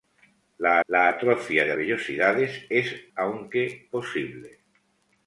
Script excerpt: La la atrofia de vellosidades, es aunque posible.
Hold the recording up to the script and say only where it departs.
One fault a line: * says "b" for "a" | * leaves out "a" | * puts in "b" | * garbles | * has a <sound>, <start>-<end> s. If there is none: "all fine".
all fine